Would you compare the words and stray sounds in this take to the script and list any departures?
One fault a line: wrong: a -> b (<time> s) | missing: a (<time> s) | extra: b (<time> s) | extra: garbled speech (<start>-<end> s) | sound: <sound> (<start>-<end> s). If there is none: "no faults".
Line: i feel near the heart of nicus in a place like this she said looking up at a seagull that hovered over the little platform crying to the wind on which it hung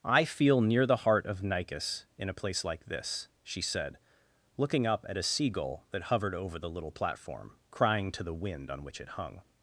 no faults